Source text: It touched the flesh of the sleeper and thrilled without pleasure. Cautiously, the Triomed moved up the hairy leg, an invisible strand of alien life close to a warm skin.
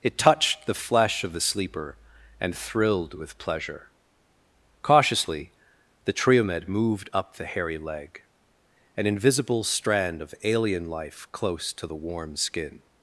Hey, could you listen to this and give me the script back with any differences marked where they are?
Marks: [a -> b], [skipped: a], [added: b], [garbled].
It touched the flesh of the sleeper and thrilled [without -> with] pleasure. Cautiously, the Triomed moved up the hairy leg, an invisible strand of alien life close to [a -> the] warm skin.